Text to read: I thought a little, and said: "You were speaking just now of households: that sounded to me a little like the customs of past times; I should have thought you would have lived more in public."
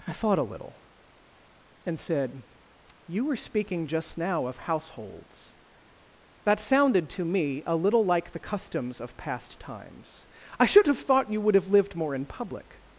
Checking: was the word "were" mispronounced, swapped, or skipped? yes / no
no